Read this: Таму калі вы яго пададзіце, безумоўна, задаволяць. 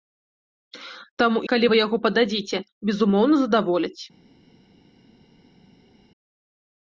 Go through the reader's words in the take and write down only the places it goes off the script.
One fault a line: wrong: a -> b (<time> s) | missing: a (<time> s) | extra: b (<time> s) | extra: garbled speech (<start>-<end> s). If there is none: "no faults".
no faults